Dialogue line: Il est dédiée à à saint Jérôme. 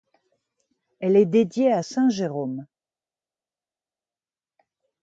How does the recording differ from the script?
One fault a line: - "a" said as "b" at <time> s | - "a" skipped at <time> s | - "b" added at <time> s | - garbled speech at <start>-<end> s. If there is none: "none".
- "Il" said as "Elle" at 1.0 s
- "à" skipped at 1.8 s